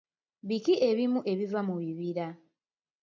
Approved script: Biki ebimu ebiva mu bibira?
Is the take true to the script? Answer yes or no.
yes